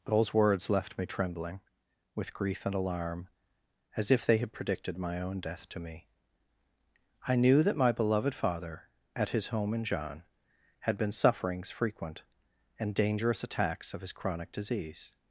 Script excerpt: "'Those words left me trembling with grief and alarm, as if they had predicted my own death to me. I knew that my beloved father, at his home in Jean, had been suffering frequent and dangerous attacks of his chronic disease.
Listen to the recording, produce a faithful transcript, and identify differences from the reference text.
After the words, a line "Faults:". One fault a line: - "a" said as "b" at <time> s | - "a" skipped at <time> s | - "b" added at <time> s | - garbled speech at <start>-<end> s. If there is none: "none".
"'Those words left me trembling with grief and alarm, as if they had predicted my own death to me. I knew that my beloved father, at his home in Jean, had been sufferings frequent and dangerous attacks of his chronic disease.
Faults:
- "suffering" said as "sufferings" at 11.1 s